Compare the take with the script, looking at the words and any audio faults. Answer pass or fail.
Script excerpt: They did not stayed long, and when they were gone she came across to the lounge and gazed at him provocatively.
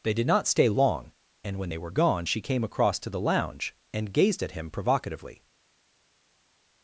fail